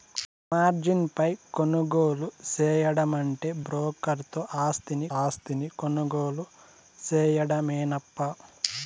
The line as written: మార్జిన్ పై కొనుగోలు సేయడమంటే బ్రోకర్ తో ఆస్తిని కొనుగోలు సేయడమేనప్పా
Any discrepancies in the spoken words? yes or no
yes